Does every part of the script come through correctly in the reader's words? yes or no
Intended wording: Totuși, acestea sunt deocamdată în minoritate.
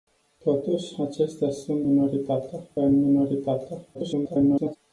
no